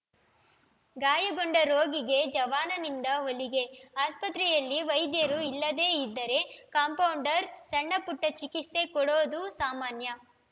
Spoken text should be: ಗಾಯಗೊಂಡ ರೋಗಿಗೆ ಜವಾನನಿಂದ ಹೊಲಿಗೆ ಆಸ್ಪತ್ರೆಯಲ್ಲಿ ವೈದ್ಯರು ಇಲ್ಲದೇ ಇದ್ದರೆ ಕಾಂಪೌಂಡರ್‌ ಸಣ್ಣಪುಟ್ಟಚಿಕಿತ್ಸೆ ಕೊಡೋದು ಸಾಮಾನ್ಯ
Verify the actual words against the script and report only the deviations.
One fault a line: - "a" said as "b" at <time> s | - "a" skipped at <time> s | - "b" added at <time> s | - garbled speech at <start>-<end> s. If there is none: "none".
none